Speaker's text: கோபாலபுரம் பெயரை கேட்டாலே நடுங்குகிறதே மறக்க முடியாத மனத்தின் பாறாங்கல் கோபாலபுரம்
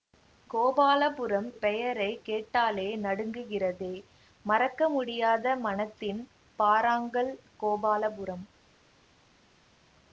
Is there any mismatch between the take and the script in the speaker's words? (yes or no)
no